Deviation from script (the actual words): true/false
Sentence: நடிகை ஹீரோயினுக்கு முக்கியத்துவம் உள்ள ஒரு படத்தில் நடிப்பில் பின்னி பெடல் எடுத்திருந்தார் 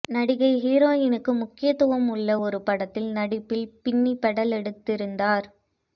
false